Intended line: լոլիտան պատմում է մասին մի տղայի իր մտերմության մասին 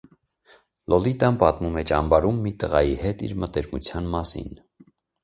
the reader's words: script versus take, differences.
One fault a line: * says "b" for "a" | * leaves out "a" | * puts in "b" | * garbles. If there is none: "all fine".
* says "ճամբարում" for "մասին"
* puts in "հետ"